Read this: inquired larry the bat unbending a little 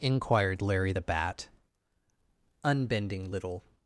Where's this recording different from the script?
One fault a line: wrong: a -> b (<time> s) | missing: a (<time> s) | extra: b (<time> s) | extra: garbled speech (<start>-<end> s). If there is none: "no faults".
missing: a (3.3 s)